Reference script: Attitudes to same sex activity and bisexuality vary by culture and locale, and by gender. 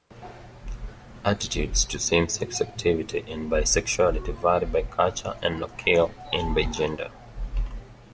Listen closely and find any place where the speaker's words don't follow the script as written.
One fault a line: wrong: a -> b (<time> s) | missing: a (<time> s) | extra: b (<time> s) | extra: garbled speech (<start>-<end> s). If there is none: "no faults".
no faults